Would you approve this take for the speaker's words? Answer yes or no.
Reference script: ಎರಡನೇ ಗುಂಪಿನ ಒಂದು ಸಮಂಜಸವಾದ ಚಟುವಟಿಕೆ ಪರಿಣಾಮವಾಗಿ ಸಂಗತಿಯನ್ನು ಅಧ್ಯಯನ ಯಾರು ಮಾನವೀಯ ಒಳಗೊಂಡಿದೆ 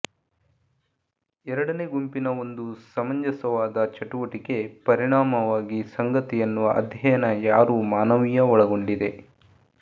yes